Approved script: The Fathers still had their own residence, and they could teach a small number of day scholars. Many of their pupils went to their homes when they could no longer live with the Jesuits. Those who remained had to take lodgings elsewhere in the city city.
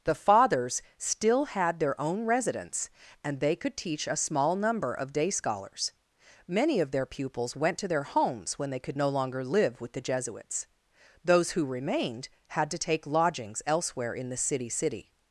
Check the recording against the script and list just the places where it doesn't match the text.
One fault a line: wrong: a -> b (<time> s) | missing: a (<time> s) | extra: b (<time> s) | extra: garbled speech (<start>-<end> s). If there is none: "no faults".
no faults